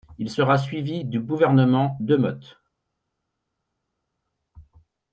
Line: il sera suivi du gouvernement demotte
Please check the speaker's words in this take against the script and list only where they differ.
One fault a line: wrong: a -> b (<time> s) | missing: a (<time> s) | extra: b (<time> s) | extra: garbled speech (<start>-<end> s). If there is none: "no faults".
no faults